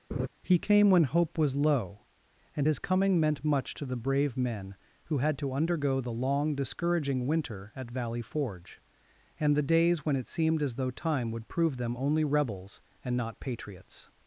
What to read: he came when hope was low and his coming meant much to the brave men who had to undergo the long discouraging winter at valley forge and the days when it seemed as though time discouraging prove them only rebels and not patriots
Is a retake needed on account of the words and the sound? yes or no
yes